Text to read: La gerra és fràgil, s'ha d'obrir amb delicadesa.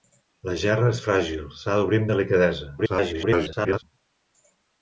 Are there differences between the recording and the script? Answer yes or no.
yes